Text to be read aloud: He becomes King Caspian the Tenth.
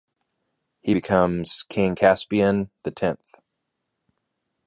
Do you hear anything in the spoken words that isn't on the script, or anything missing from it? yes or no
no